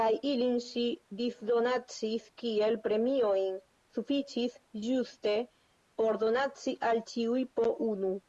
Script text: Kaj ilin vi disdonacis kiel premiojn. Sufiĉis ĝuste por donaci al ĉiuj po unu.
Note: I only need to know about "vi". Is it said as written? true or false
false